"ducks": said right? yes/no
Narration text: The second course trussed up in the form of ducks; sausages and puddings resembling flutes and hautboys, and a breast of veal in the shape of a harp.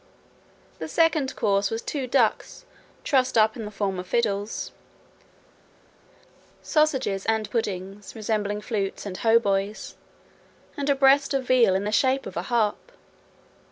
no